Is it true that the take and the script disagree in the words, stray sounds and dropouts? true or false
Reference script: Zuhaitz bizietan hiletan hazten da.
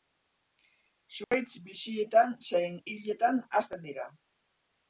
true